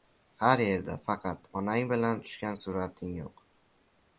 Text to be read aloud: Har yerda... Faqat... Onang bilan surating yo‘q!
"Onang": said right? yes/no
yes